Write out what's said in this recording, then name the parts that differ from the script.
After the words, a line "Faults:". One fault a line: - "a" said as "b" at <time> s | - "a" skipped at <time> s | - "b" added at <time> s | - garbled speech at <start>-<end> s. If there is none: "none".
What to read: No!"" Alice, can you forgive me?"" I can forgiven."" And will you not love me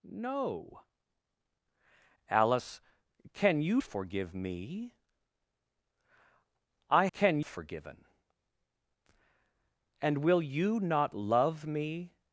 No!"" Alice, can you forgive me?"" I can forgiven."" And will you not love me
Faults:
none